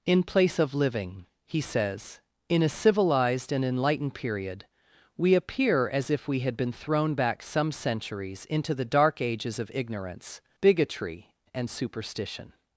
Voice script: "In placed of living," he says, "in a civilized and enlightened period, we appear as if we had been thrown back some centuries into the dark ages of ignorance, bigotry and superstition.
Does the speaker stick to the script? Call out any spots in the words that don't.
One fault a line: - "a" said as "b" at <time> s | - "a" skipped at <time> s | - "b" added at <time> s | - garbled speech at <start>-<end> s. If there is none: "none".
- "placed" said as "place" at 0.2 s